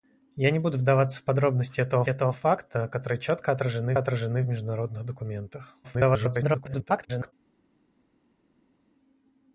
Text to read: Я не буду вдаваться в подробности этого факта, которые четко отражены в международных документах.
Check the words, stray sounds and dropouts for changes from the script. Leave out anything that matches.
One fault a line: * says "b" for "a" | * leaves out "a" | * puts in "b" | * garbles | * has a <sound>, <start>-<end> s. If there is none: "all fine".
* puts in "этого"
* puts in "отражены"
* garbles